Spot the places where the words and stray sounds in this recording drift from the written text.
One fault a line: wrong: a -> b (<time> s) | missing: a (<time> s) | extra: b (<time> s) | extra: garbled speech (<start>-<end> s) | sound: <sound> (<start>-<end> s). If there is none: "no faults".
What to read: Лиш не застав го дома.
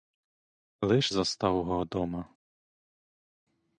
missing: не (1.1 s)